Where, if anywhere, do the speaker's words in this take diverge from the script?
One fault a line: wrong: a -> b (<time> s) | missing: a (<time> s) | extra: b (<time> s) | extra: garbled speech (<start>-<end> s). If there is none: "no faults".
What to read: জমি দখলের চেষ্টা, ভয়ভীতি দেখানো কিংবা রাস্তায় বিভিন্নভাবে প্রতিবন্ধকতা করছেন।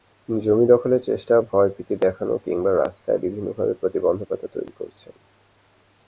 extra: তৈরি (4.5 s)